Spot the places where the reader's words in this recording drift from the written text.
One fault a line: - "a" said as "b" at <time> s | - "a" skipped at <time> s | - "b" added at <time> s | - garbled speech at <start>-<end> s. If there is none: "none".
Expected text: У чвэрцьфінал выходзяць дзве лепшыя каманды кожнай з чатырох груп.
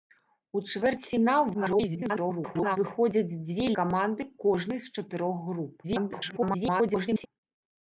- garbled speech at 1.5-2.8 s
- "лепшыя" skipped at 3.7 s
- garbled speech at 5.8-7.3 s